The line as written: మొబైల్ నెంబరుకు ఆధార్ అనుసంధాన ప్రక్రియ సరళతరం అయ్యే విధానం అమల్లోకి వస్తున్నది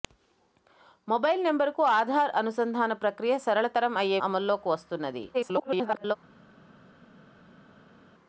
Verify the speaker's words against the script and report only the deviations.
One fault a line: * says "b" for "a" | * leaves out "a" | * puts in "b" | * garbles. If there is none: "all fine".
* leaves out "విధానం"
* garbles